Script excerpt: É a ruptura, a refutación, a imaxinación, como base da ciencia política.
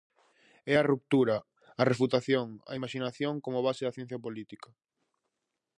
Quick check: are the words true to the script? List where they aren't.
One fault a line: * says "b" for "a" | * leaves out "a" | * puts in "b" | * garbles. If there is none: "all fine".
all fine